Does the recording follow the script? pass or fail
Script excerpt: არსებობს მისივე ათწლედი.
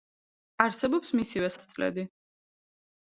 pass